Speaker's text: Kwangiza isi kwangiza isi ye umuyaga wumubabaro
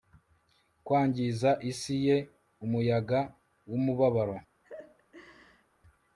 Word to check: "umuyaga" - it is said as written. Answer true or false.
true